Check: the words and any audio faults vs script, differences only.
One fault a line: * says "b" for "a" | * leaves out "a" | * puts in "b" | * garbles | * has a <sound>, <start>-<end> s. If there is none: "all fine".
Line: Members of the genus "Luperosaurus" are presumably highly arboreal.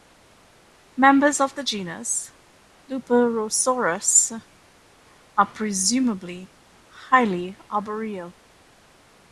all fine